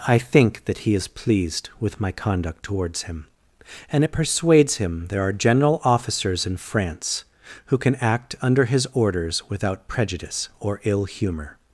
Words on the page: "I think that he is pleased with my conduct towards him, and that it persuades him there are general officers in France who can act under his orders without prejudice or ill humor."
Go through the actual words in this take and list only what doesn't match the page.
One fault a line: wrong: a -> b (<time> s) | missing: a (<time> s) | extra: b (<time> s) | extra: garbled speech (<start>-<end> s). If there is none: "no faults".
missing: that (4.0 s)